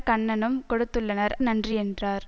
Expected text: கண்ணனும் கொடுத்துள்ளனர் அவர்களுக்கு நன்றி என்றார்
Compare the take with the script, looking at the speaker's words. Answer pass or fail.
fail